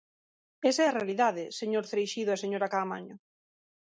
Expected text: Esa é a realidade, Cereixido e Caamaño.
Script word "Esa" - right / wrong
right